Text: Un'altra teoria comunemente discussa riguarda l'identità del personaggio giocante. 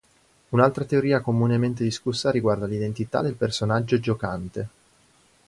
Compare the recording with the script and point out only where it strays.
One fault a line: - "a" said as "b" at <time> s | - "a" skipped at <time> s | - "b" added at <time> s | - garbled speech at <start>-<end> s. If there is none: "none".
none